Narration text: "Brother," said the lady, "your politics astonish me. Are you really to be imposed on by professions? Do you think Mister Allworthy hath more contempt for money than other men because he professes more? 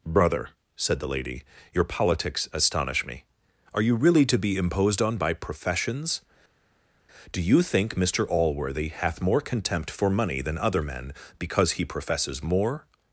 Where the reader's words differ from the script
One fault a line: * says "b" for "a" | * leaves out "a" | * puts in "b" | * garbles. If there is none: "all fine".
all fine